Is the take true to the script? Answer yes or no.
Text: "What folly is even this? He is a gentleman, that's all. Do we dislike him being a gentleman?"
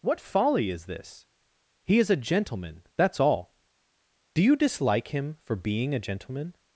no